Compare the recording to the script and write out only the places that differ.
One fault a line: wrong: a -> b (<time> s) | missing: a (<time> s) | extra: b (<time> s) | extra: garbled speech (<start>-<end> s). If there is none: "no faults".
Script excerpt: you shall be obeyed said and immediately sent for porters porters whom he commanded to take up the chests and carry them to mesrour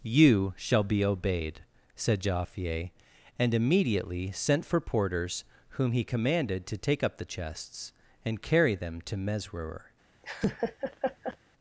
extra: jaaffier (2.2 s)
missing: porters (5.4 s)